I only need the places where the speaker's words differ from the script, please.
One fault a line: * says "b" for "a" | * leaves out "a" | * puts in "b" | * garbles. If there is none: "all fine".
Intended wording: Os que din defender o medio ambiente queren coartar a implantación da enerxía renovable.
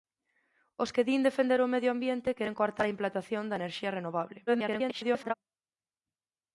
* garbles